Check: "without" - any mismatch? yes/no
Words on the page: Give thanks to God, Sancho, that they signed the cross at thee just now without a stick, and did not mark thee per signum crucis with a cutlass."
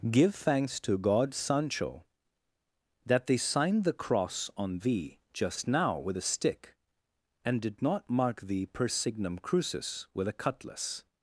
yes